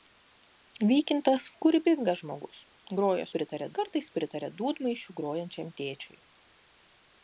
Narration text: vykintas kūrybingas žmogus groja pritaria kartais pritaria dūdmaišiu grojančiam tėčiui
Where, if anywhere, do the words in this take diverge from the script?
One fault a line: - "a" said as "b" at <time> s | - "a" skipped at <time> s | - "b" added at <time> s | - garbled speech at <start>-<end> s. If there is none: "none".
none